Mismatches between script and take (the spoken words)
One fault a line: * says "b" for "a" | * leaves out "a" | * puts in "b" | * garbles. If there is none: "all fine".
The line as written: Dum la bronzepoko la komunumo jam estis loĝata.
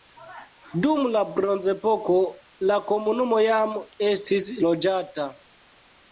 all fine